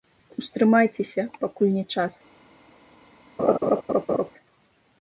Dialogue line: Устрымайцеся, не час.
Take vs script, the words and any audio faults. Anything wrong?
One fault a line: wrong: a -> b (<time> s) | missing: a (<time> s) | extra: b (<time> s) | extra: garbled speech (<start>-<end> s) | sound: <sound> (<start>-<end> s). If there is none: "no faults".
extra: пакуль (1.4 s)
sound: laugh (3.4-4.3 s)